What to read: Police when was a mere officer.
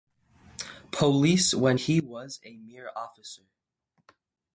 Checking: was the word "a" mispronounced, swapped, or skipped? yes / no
no